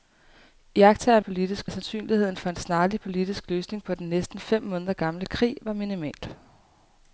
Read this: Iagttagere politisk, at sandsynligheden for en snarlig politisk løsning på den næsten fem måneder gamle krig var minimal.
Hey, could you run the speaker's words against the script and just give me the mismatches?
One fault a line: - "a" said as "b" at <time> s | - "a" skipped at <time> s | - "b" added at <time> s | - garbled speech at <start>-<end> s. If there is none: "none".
none